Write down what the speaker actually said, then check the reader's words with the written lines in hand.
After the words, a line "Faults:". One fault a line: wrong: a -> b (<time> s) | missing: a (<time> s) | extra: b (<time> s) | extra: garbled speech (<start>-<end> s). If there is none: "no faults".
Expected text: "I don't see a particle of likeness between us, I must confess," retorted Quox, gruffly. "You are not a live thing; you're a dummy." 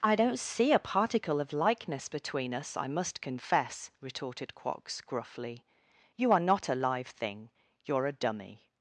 "I don't see a particle of likeness between us, I must confess," retorted Quox, gruffly. "You are not a live thing; you're a dummy."
Faults:
no faults